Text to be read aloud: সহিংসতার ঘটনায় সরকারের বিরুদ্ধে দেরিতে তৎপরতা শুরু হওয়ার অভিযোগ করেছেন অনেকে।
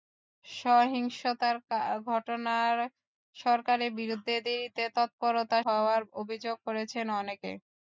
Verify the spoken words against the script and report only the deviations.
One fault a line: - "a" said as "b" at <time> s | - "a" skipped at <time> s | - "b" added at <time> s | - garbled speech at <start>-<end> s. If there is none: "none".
- "শুরু" skipped at 5.6 s